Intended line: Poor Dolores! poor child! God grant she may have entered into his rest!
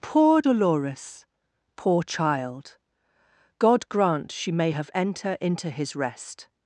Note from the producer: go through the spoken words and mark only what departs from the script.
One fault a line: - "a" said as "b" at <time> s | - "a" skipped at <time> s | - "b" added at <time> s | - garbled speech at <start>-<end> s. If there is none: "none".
- "entered" said as "enter" at 4.9 s